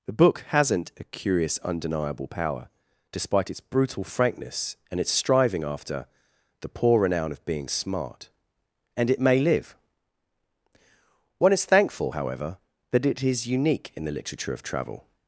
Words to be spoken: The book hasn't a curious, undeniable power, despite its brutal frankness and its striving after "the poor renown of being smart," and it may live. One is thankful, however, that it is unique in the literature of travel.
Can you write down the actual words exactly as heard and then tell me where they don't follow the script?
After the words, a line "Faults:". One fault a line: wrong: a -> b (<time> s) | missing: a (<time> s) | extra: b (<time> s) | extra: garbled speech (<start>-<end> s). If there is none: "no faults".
The book hasn't a curious, undeniable power, despite its brutal frankness and its striving after "the poor renown of being smart," and it may live. One is thankful, however, that it is unique in the literature of travel.
Faults:
no faults